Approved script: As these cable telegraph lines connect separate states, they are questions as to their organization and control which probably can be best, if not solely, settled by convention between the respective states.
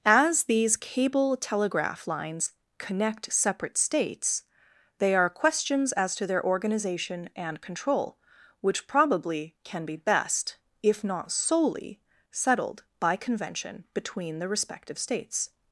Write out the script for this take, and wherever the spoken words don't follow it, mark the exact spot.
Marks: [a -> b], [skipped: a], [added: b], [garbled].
As these cable telegraph lines connect separate states, they are questions as to their organization and control which probably can be best, if not solely, settled by convention between the respective states.